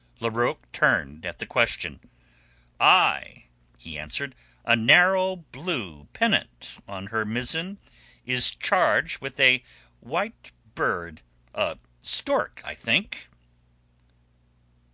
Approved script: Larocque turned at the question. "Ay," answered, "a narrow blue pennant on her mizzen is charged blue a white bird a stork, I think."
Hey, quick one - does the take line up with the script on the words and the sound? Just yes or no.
no